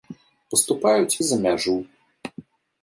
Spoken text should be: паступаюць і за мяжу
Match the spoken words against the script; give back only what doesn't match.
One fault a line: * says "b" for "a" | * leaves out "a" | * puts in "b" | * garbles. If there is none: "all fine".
all fine